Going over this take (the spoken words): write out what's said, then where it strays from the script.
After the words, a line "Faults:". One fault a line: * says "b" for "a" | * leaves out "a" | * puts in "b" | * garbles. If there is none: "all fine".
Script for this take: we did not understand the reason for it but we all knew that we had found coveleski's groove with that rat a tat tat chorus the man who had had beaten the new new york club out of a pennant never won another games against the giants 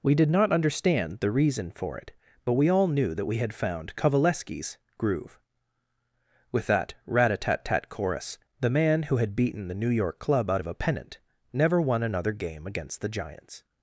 we did not understand the reason for it but we all knew that we had found coveleski's groove with that rat a tat tat chorus the man who had beaten the new york club out of a pennant never won another game against the giants
Faults:
* leaves out "had"
* leaves out "new"
* says "game" for "games"